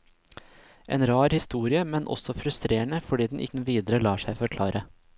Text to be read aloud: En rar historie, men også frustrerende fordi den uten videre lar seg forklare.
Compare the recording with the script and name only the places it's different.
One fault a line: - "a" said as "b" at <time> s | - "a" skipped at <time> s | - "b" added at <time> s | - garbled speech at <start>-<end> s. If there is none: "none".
none